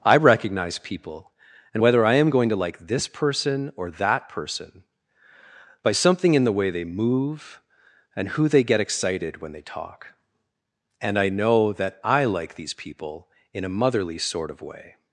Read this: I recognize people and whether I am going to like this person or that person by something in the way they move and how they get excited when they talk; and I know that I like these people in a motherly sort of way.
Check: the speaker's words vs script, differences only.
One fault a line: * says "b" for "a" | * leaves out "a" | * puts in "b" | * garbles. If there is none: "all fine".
* says "who" for "how"